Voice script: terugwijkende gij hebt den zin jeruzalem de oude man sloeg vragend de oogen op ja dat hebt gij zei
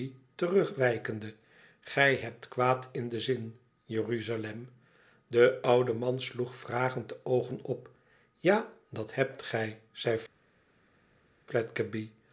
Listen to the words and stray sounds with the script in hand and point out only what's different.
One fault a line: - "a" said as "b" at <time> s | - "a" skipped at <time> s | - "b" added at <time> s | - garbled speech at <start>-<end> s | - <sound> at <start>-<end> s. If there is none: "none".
- "kwaad in" added at 2.5 s